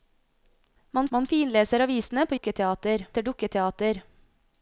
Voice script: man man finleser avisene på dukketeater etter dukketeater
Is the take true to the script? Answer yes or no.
yes